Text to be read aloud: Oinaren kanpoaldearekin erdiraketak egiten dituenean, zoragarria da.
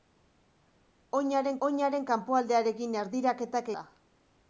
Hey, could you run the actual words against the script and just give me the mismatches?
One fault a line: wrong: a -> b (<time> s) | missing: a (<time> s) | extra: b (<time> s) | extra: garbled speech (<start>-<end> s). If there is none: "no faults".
extra: oinaren (1.7 s)
missing: egiten dituenean zoragarria (3.7 s)